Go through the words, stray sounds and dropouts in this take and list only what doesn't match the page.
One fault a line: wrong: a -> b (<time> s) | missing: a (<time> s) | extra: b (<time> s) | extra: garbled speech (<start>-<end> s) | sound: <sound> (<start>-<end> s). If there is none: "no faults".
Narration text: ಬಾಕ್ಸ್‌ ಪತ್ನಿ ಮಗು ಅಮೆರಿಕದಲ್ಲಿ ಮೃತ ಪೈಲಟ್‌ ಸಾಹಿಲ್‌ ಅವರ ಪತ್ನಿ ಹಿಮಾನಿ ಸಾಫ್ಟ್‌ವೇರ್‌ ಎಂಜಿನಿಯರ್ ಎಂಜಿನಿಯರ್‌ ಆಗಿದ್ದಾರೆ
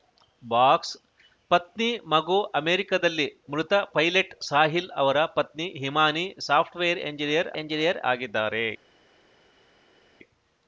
no faults